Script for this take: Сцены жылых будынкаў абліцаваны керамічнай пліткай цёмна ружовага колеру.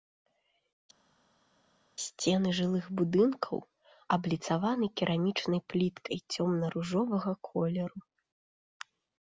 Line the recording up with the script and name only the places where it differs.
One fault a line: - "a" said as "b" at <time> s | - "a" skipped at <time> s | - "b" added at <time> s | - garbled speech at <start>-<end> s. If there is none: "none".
none